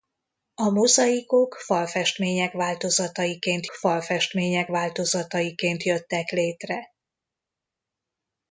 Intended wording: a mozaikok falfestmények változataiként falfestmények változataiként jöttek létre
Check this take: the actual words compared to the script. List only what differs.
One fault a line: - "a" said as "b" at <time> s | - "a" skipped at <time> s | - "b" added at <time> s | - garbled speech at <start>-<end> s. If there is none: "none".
none